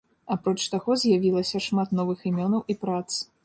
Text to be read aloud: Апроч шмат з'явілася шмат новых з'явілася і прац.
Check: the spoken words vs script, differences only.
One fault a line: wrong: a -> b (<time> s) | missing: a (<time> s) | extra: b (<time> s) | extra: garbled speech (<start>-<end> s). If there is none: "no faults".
wrong: шмат -> таго (0.8 s)
wrong: з'явілася -> імёнаў (2.3 s)